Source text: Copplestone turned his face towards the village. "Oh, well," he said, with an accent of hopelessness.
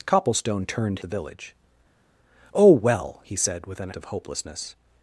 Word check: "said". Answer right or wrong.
right